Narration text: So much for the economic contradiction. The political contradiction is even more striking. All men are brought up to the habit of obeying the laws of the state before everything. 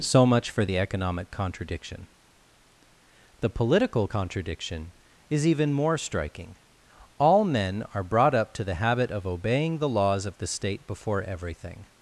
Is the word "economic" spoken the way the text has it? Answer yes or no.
yes